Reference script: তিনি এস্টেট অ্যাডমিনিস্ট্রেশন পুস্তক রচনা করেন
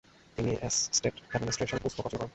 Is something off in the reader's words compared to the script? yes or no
no